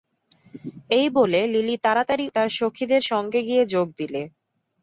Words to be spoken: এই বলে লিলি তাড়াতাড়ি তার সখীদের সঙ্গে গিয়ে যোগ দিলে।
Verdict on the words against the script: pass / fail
pass